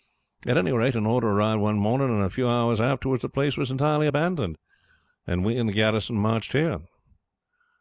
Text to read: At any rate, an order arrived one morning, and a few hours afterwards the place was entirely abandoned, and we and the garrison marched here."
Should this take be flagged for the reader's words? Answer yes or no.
no